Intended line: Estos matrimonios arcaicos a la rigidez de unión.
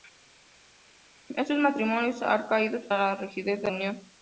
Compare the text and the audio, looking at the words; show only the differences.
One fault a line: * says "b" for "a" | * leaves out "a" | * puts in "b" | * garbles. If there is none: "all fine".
all fine